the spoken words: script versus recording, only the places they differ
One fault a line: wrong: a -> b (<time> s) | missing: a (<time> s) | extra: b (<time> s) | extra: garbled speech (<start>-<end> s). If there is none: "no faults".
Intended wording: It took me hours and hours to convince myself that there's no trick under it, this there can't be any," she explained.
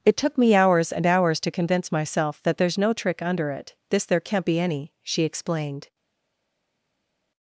no faults